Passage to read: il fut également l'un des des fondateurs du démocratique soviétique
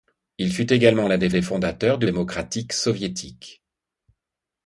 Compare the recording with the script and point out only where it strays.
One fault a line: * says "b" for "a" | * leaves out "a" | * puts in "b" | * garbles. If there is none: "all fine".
all fine